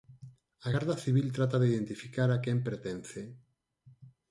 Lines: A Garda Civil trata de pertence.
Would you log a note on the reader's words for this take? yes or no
yes